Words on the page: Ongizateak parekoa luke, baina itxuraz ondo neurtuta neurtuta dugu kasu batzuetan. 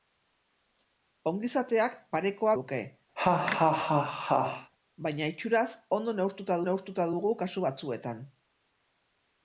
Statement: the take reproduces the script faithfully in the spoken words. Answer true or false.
true